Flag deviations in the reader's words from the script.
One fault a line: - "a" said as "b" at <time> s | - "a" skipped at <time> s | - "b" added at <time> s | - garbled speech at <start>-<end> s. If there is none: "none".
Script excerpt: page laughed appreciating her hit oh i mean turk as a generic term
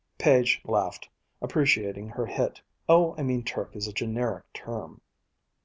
none